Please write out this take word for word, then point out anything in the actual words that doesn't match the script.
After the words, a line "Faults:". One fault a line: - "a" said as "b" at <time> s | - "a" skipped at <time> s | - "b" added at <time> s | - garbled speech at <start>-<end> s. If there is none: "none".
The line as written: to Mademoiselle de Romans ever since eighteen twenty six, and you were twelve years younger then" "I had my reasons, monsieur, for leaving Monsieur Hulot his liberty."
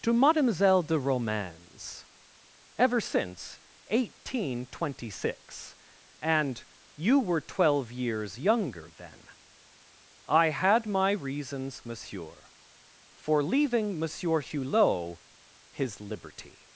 to Mademoiselle de Romans ever since eighteen twenty six, and you were twelve years younger then" "I had my reasons, monsieur, for leaving Monsieur Hulot his liberty."
Faults:
none